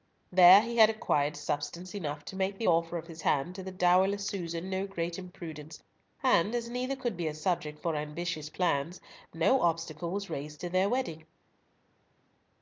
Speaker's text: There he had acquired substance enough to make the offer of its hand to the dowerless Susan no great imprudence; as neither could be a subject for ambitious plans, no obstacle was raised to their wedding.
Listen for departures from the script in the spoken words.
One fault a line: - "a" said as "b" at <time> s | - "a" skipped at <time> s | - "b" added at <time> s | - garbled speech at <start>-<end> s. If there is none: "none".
- "its" said as "his" at 3.1 s
- "and" added at 6.2 s